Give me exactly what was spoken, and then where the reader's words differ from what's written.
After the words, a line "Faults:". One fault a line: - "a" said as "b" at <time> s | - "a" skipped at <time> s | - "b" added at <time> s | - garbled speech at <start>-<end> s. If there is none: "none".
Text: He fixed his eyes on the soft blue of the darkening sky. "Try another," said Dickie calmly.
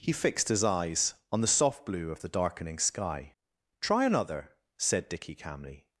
He fixed his eyes on the soft blue of the darkening sky. "Try another," said Dickie calmly.
Faults:
none